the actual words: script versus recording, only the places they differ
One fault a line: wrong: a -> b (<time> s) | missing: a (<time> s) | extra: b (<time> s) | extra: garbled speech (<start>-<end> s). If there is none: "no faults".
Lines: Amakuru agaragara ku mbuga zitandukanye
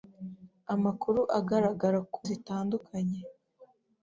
missing: mbuga (2.2 s)